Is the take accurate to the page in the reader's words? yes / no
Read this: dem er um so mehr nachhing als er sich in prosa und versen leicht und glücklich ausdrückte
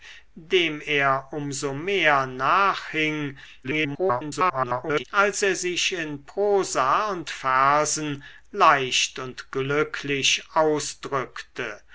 no